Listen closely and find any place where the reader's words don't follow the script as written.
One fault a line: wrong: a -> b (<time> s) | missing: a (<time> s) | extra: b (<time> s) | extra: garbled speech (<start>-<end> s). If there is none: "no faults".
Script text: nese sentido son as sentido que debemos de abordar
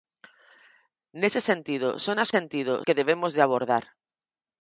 no faults